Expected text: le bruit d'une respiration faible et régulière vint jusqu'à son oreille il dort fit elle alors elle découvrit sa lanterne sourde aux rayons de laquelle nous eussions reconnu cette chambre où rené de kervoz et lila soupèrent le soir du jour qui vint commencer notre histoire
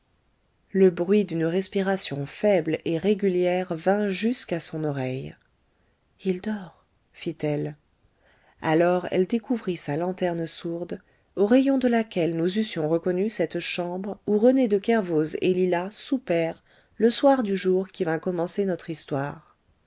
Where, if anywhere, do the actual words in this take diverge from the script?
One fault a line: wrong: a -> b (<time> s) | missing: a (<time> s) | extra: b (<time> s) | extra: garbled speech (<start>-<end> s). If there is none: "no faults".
no faults